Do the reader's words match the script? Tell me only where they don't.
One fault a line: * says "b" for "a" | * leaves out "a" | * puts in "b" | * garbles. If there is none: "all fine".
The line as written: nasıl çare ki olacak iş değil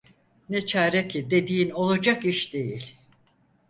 * says "ne" for "nasıl"
* puts in "dediğin"